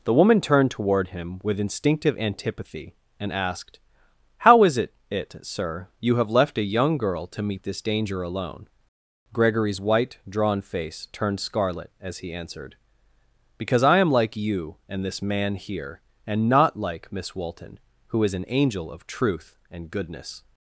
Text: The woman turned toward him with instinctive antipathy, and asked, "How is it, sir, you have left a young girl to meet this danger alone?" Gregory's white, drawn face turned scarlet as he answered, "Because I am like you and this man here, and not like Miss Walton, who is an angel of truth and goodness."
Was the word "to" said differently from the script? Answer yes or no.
no